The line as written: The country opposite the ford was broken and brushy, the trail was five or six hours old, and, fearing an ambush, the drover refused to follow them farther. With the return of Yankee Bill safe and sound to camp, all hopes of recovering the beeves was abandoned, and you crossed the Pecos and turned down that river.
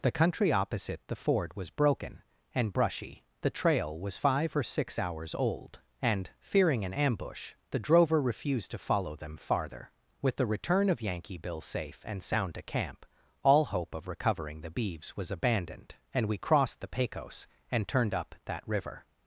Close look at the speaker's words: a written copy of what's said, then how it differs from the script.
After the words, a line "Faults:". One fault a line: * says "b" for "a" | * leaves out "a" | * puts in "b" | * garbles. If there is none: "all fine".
The country opposite the ford was broken and brushy, the trail was five or six hours old, and, fearing an ambush, the drover refused to follow them farther. With the return of Yankee Bill safe and sound to camp, all hope of recovering the beeves was abandoned, and we crossed the Pecos and turned up that river.
Faults:
* says "hope" for "hopes"
* says "we" for "you"
* says "up" for "down"